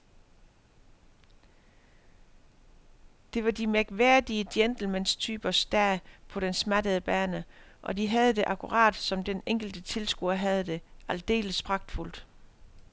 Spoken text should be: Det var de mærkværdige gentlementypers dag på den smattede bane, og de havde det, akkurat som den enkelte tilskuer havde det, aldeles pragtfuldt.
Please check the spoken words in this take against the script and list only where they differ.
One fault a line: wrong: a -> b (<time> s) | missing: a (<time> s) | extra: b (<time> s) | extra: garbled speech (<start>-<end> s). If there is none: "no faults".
no faults